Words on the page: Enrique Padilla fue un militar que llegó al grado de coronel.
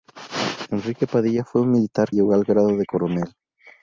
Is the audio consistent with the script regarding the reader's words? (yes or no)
no